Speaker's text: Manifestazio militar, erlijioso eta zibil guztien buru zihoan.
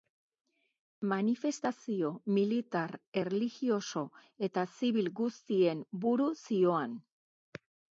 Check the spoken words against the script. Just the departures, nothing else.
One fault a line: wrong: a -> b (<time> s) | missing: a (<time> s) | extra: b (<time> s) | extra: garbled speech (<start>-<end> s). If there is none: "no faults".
no faults